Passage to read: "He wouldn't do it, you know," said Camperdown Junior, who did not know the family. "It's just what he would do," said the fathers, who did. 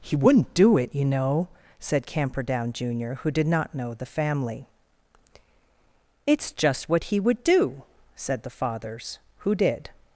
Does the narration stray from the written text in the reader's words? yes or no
no